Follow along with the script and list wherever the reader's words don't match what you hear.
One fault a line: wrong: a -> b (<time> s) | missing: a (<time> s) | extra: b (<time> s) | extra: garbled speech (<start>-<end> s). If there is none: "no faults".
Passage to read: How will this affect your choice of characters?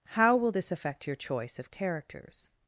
no faults